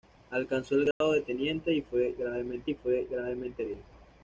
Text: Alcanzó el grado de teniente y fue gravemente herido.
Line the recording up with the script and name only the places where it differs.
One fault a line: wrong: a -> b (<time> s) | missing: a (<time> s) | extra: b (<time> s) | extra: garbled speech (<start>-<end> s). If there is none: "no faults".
extra: y fue gravemente (2.6 s)